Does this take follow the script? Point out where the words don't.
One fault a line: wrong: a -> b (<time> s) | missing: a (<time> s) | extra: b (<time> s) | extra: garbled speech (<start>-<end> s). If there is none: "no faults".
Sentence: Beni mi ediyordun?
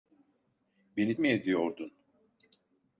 no faults